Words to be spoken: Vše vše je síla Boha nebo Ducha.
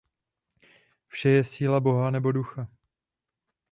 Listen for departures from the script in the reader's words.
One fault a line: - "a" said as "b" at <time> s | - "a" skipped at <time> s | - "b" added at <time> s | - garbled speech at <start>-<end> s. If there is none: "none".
- "vše" skipped at 1.3 s